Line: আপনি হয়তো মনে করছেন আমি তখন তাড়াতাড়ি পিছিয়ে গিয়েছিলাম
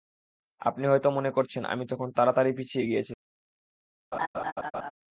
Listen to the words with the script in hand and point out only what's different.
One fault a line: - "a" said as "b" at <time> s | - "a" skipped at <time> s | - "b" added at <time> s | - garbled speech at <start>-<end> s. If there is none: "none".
none